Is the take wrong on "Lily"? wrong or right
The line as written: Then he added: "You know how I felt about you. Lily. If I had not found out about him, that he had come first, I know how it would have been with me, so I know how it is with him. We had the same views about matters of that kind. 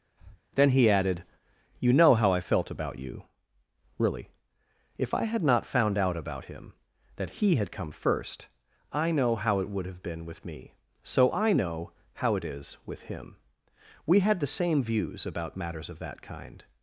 wrong